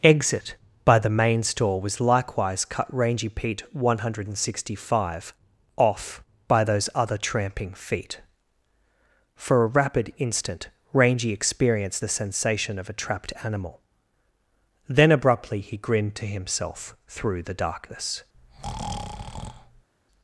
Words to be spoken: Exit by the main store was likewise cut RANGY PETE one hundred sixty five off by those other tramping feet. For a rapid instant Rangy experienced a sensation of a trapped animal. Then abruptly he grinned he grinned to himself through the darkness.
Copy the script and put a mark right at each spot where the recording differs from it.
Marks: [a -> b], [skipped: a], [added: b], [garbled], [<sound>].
Exit by the main store was likewise cut RANGY PETE one hundred sixty five off by those other tramping feet. For a rapid instant Rangy experienced [a -> the] sensation of a trapped animal. Then abruptly he grinned [skipped: he grinned] to himself through the darkness. [breath]